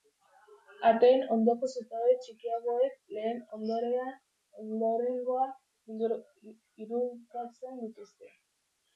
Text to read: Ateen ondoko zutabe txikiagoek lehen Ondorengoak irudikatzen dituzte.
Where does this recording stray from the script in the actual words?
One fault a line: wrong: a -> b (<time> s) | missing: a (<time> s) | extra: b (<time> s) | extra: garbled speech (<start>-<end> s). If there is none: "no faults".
no faults